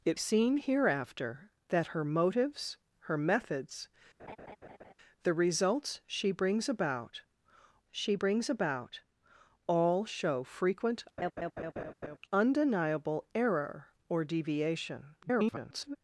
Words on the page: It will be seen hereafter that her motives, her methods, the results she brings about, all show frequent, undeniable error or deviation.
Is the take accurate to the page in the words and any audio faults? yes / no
no